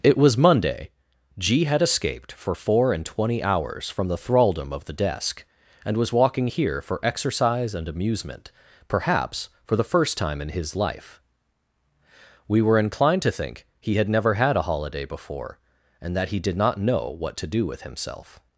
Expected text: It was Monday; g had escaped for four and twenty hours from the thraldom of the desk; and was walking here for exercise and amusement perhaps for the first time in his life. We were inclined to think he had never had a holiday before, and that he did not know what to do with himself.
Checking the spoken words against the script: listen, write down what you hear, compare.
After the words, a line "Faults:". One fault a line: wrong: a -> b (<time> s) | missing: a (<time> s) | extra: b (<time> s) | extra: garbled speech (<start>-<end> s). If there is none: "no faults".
It was Monday; g had escaped for four and twenty hours from the thraldom of the desk; and was walking here for exercise and amusement perhaps for the first time in his life. We were inclined to think he had never had a holiday before, and that he did not know what to do with himself.
Faults:
no faults